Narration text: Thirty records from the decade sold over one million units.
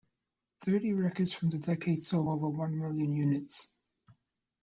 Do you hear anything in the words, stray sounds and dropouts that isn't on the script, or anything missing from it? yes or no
no